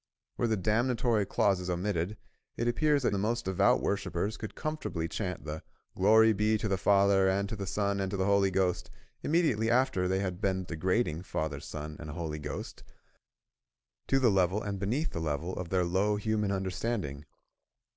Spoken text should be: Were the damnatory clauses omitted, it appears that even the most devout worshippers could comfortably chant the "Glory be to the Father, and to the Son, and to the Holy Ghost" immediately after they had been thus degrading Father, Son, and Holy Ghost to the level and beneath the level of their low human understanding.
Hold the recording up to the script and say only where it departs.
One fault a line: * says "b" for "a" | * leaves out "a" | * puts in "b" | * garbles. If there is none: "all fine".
* leaves out "even"
* leaves out "thus"